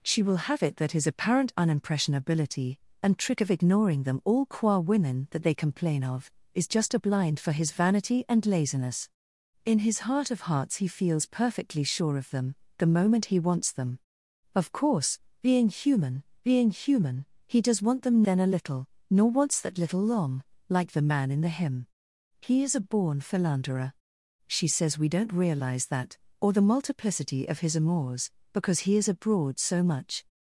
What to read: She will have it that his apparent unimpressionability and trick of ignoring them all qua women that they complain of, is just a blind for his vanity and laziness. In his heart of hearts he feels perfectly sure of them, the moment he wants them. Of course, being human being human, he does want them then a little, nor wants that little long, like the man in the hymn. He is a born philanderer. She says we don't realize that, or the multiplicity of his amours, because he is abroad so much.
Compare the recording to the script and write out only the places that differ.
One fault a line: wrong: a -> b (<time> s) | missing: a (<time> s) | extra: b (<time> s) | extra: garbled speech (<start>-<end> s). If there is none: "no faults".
no faults